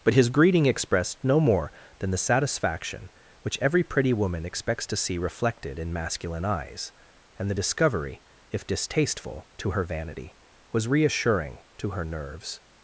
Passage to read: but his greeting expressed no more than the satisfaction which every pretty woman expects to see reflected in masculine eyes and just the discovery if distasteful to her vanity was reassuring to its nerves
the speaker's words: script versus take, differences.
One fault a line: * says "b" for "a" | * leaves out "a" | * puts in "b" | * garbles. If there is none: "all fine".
* leaves out "just"
* says "her" for "its"